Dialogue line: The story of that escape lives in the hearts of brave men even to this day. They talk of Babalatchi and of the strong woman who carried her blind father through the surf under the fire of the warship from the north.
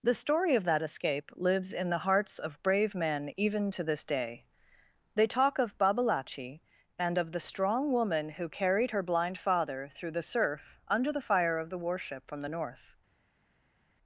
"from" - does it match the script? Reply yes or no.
yes